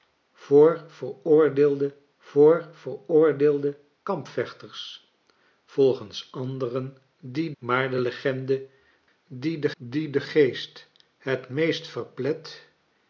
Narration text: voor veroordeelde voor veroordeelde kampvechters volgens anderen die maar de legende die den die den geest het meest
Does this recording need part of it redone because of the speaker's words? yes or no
no